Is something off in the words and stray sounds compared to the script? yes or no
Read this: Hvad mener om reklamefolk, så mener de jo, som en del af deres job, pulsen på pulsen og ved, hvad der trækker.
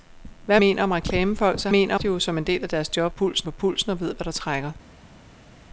no